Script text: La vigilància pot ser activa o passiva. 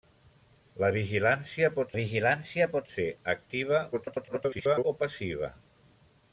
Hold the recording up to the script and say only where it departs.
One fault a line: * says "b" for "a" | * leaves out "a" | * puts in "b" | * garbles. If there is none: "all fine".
* puts in "vigilància pot"
* garbles